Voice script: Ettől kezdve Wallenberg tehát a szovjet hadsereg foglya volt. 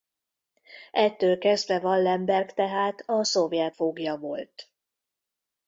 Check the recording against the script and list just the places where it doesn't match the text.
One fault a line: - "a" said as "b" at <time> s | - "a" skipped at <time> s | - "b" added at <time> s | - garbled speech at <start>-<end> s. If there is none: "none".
- "hadsereg" skipped at 3.8 s